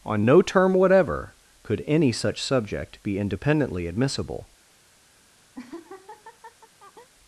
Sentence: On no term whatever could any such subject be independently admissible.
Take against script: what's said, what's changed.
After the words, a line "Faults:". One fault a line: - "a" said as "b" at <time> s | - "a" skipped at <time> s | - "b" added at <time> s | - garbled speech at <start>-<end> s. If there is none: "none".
On no term whatever could any such subject be independently admissible.
Faults:
none